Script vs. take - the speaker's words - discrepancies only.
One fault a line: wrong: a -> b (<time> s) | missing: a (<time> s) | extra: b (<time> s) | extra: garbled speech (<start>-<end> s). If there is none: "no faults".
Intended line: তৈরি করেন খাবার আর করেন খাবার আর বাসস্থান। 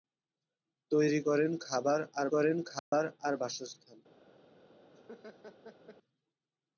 no faults